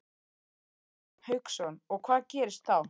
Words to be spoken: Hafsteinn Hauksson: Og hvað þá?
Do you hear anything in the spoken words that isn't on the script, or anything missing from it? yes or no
yes